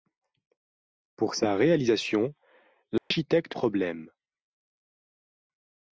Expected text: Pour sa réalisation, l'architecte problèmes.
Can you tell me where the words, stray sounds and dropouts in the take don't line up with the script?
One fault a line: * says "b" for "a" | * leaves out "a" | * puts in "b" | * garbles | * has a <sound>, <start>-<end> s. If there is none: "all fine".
* has a dropout, 3.0-3.1 s